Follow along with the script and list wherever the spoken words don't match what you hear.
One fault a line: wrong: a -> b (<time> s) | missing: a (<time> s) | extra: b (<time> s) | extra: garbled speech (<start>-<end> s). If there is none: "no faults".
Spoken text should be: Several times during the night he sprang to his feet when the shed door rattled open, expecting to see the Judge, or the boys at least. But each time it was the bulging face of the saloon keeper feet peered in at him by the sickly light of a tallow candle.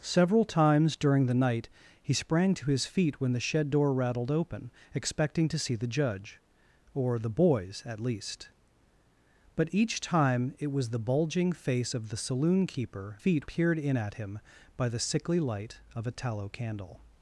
no faults